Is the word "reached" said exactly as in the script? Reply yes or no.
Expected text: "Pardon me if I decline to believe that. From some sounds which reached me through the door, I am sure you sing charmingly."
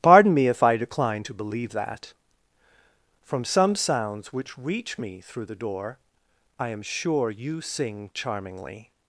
no